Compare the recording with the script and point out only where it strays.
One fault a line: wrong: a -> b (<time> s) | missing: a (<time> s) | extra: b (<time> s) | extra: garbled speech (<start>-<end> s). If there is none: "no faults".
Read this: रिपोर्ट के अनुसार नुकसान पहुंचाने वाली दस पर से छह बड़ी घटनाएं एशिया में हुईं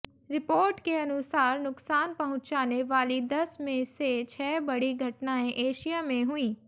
wrong: पर -> में (3.6 s)